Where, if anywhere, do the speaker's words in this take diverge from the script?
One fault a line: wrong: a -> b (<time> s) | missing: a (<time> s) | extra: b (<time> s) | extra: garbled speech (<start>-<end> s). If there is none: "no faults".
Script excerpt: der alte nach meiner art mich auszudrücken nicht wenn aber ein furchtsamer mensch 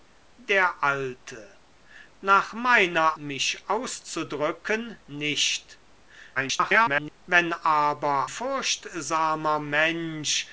missing: art (3.2 s)
extra: garbled speech (6.4-7.2 s)
missing: ein (8.3 s)